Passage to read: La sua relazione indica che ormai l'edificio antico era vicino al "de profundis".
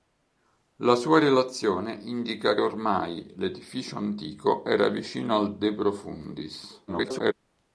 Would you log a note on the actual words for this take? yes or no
yes